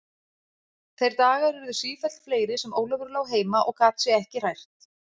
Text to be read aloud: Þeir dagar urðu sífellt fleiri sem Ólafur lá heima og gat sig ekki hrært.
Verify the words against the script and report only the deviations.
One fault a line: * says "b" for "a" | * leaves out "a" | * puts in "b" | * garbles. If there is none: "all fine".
all fine